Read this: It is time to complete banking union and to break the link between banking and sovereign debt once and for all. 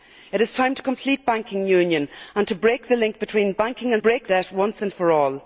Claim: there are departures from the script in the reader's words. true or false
true